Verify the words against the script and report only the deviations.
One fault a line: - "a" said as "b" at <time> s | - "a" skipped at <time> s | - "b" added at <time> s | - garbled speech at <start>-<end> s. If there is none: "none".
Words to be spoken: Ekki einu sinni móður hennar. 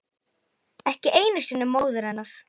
none